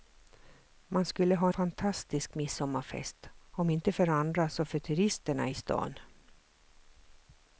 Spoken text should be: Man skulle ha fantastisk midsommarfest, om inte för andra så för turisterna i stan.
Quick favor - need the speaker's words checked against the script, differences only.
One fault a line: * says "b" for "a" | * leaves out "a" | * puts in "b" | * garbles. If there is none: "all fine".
all fine